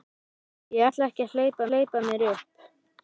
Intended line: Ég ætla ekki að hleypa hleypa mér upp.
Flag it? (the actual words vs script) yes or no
no